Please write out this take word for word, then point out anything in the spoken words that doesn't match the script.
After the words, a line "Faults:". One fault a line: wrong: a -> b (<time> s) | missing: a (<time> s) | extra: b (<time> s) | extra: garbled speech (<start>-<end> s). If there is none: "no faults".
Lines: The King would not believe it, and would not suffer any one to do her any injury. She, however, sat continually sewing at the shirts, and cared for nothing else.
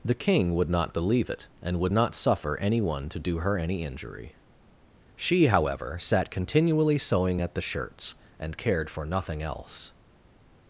The King would not believe it, and would not suffer any one to do her any injury. She, however, sat continually sewing at the shirts, and cared for nothing else.
Faults:
no faults